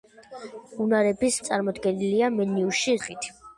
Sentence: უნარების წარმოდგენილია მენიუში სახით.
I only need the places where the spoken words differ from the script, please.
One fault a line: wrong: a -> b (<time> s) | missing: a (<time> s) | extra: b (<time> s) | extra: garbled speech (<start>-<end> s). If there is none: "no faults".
no faults